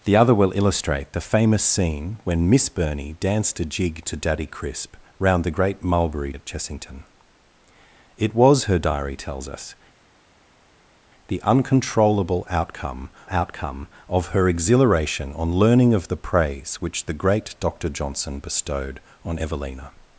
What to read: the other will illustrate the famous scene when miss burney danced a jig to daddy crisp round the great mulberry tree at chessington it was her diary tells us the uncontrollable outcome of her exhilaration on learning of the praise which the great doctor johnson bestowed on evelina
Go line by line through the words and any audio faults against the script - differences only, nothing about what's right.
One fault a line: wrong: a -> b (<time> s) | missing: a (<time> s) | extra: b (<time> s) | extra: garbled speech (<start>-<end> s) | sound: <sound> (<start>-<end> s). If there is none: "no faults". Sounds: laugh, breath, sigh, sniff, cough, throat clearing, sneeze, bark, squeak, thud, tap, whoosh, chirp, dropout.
missing: tree (6.3 s)
extra: outcome (13.3 s)